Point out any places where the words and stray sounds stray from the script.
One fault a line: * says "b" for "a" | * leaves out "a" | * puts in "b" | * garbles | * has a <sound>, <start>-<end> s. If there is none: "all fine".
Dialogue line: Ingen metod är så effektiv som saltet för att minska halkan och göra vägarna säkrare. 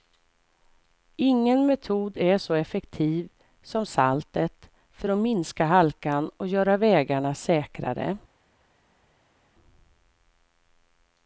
all fine